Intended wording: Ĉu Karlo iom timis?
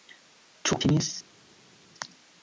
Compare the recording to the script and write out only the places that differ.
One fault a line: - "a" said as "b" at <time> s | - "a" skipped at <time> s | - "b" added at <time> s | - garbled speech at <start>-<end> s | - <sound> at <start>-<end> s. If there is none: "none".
- "Karlo iom" skipped at 0.8 s